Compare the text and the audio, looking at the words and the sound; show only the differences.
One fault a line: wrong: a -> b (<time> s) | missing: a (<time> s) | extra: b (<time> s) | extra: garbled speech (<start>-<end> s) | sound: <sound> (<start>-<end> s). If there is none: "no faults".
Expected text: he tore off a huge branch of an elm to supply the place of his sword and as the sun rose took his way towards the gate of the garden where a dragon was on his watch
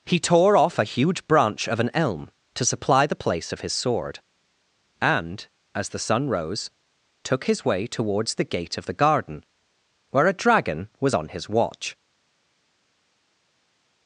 no faults